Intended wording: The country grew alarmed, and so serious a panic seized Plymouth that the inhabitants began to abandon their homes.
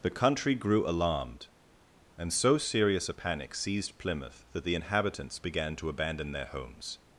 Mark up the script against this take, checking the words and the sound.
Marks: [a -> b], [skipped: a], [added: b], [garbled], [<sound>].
The country grew alarmed, and so serious a panic seized Plymouth that the inhabitants began to abandon their homes.